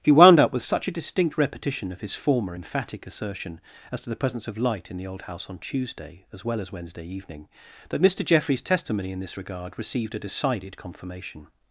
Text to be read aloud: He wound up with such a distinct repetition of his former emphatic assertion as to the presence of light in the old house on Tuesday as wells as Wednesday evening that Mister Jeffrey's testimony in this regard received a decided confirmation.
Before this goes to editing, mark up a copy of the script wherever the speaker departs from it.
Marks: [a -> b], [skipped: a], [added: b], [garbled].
He wound up with such a distinct repetition of his former emphatic assertion as to the presence of light in the old house on Tuesday as [wells -> well] as Wednesday evening that Mister Jeffrey's testimony in this regard received a decided confirmation.